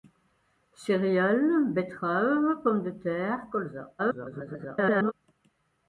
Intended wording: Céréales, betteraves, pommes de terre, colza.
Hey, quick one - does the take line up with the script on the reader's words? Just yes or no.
no